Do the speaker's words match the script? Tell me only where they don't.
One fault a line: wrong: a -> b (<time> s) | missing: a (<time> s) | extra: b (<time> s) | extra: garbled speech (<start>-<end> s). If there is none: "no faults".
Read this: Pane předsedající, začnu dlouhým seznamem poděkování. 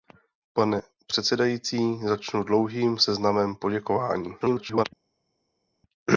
extra: garbled speech (4.4-4.9 s)